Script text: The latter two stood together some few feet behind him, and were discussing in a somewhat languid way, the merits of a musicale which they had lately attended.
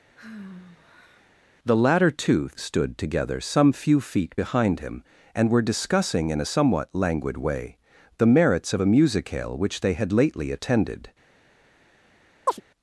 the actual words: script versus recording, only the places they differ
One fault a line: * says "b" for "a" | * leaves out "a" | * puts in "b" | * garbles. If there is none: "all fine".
all fine